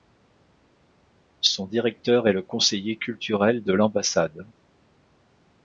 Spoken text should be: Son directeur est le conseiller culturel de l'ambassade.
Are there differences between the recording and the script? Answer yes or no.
no